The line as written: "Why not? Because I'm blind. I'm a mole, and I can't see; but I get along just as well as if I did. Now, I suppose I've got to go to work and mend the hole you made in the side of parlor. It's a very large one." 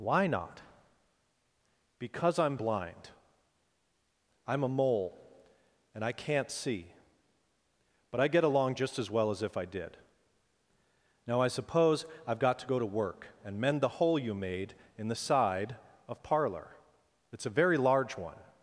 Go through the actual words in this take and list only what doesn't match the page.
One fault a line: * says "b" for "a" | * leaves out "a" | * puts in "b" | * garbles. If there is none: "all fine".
all fine